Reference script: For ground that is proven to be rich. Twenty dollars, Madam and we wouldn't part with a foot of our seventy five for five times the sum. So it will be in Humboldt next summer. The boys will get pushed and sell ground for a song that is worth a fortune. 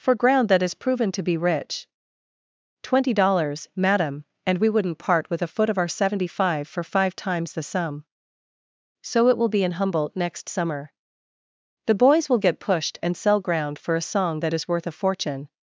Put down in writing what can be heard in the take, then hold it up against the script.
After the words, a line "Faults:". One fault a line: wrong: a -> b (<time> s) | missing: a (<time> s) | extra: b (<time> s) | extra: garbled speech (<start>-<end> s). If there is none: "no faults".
For ground that is proven to be rich. Twenty dollars, Madam and we wouldn't part with a foot of our seventy five for five times the sum. So it will be in Humboldt next summer. The boys will get pushed and sell ground for a song that is worth a fortune.
Faults:
no faults